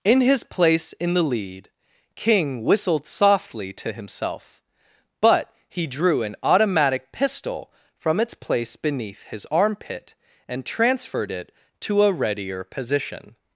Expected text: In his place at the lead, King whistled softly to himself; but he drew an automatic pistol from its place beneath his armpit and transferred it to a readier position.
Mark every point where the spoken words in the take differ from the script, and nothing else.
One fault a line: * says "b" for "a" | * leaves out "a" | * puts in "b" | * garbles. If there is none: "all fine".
* says "in" for "at"